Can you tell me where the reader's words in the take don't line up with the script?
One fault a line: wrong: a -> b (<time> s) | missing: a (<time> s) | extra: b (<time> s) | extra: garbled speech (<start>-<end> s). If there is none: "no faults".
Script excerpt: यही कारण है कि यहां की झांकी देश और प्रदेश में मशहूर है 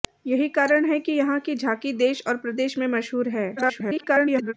extra: garbled speech (3.6-4.5 s)